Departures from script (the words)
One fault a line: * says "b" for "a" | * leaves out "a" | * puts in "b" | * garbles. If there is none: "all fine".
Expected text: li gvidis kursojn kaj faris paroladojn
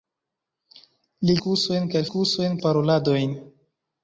* leaves out "gvidis"
* says "kursojn" for "faris"